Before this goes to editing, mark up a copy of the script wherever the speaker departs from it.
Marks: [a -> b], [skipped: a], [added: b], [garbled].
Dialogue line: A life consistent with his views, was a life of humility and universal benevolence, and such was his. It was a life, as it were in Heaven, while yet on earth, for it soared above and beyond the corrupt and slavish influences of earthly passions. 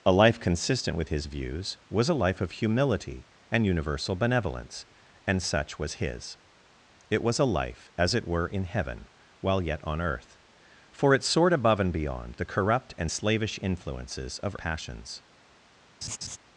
A life consistent with his views, was a life of humility and universal benevolence, and such was his. It was a life, as it were in Heaven, while yet on earth, for it soared above and beyond the corrupt and slavish influences of [skipped: earthly] passions.